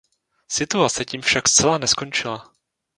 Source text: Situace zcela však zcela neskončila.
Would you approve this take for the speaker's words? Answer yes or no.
no